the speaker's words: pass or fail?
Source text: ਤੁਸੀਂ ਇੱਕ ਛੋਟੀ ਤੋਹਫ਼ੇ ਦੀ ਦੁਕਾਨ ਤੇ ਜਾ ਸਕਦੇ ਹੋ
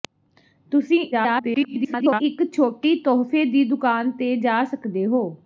fail